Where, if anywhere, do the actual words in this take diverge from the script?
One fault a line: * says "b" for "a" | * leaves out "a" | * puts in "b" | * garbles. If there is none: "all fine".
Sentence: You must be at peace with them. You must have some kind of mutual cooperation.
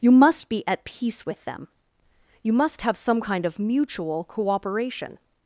all fine